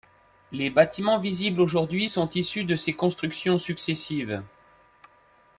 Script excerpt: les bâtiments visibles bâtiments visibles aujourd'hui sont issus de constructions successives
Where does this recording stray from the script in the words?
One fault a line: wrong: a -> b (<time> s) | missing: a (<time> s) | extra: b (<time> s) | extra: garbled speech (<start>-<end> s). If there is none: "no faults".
missing: bâtiments visibles (1.6 s)
extra: ces (2.8 s)